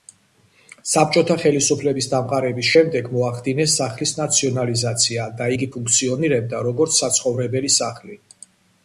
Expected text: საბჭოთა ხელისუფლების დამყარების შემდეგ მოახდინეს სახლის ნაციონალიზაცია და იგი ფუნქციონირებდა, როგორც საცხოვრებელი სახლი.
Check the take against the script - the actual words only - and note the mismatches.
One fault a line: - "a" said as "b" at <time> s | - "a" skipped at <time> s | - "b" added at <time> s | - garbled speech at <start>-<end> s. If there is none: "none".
none